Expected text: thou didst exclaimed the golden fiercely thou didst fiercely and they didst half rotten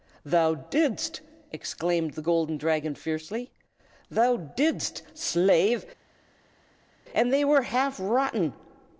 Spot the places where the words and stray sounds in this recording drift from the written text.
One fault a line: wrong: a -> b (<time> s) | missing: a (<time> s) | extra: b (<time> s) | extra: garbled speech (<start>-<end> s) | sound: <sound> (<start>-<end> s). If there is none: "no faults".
extra: dragon (2.6 s)
wrong: fiercely -> slave (5.1 s)
wrong: didst -> were (7.4 s)